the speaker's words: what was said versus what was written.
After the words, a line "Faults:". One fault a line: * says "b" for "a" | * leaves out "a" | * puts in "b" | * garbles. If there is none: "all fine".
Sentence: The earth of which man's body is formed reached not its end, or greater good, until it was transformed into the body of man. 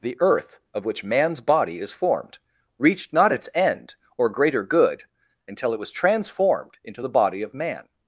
The earth of which man's body is formed reached not its end, or greater good, until it was transformed into the body of man.
Faults:
all fine